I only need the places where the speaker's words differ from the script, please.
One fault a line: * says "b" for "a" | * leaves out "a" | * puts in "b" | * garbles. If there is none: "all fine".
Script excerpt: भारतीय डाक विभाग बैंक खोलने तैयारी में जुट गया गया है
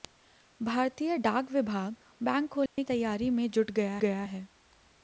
all fine